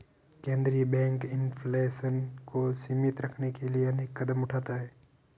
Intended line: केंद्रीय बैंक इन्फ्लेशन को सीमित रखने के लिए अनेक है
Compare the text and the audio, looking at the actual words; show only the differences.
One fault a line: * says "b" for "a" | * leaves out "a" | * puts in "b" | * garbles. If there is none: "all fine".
* puts in "कदम उठाता"